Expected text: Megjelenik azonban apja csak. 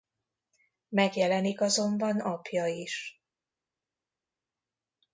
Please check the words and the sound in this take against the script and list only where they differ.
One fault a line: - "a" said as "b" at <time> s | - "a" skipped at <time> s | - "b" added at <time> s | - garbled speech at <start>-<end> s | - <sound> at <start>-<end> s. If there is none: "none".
- "csak" said as "is" at 2.7 s